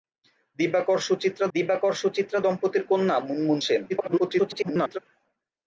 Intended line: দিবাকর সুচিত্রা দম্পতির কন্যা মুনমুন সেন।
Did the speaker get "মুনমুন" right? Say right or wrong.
right